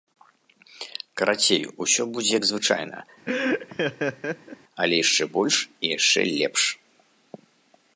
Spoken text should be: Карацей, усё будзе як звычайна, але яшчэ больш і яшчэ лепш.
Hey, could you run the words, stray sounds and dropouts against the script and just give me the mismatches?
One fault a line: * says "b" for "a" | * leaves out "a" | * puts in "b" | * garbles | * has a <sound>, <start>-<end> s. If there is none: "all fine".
* has a laugh, 3.3-4.6 s